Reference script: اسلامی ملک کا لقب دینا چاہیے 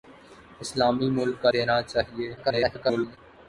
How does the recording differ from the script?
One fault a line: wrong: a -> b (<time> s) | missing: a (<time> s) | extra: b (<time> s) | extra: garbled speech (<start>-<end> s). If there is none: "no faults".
missing: لقب (1.5 s)
extra: garbled speech (2.4-3.2 s)